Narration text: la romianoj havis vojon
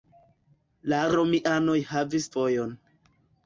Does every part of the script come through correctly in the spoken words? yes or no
yes